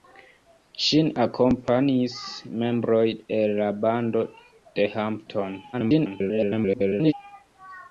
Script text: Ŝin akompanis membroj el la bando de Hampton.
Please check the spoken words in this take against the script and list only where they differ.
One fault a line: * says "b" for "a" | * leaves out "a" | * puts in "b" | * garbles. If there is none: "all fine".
* garbles